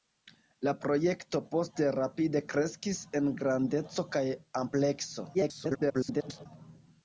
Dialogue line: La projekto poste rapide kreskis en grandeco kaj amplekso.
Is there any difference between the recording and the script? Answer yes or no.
yes